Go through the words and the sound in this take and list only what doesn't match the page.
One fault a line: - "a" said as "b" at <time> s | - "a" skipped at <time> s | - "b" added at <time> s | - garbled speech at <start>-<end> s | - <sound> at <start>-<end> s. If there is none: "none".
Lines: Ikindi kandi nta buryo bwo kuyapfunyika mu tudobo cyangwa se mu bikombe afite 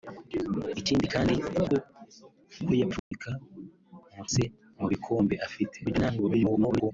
- "nta buryo" skipped at 1.3 s
- dropout at 3.0-3.1 s
- "tudobo cyangwa" skipped at 4.2 s
- garbled speech at 5.8-6.9 s